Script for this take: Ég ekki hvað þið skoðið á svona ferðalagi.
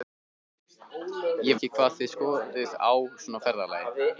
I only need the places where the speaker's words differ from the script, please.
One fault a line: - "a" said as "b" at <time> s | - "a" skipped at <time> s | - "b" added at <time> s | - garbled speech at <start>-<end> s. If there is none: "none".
none